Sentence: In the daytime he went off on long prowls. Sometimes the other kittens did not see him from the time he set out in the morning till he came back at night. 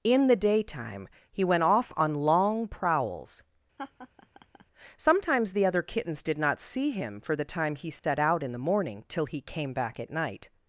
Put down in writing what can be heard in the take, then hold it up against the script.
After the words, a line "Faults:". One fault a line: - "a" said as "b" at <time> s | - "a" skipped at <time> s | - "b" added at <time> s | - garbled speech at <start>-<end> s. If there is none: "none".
In the daytime he went off on long prowls. Sometimes the other kittens did not see him for the time he set out in the morning till he came back at night.
Faults:
- "from" said as "for" at 7.2 s